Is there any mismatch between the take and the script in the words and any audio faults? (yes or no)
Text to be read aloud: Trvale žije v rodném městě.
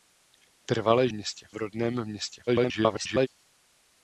yes